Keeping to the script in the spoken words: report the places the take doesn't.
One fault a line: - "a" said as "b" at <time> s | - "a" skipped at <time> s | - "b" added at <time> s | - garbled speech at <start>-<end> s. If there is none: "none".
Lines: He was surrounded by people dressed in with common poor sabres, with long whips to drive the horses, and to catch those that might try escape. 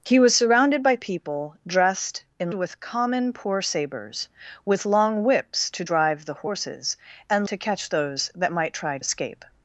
none